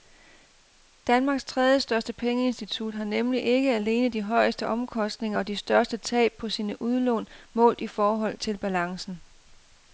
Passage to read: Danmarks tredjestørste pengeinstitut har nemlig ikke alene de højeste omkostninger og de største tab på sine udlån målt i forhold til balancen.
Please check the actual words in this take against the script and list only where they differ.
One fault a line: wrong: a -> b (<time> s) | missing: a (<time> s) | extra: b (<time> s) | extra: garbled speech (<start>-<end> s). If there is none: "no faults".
no faults